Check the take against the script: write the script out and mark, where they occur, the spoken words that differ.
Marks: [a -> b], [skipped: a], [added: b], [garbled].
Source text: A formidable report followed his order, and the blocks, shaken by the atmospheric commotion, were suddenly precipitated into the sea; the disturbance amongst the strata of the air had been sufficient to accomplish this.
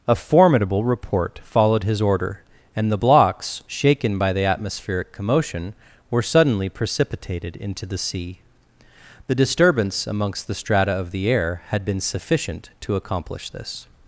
A formidable report followed his order, and the blocks, shaken by the atmospheric commotion, were suddenly precipitated into the sea; the disturbance amongst the strata of the air had been sufficient to accomplish this.